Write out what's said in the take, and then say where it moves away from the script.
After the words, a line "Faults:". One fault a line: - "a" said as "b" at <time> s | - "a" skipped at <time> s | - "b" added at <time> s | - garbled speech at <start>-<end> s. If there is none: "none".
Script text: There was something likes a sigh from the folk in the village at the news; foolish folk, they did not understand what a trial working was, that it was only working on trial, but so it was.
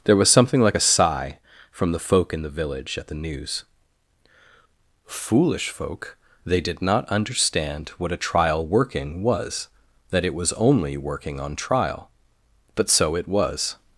There was something like a sigh from the folk in the village at the news; foolish folk, they did not understand what a trial working was, that it was only working on trial, but so it was.
Faults:
- "likes" said as "like" at 0.6 s